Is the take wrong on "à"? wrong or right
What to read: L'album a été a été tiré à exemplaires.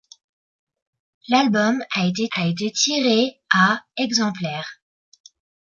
right